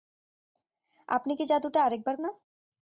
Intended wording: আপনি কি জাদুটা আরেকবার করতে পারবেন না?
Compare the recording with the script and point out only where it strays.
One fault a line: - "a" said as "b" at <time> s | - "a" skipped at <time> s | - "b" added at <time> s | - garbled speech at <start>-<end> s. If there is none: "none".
- "করতে পারবেন" skipped at 2.1 s